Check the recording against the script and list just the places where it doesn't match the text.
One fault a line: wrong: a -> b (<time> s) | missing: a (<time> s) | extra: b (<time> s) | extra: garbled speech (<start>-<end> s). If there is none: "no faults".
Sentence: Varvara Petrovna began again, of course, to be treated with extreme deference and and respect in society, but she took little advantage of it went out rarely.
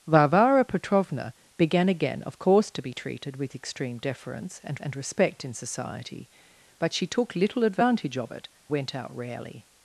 no faults